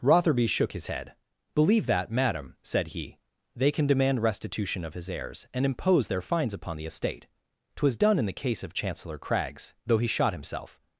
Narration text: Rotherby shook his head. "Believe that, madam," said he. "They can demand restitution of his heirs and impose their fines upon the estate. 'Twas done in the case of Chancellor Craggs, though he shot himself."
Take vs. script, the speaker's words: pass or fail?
pass